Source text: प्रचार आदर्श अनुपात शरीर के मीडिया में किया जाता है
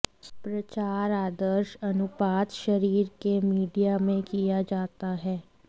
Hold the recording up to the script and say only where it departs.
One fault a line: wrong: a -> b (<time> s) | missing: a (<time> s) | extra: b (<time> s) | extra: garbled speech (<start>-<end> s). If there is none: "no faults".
no faults